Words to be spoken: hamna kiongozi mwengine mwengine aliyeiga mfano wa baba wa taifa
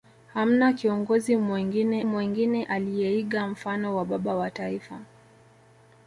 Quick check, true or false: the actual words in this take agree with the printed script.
true